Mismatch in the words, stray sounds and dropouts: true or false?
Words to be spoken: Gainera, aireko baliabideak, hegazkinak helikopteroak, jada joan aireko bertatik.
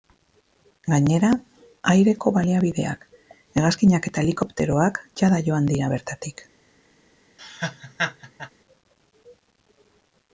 true